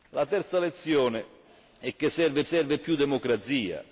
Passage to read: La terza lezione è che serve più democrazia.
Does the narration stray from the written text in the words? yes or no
yes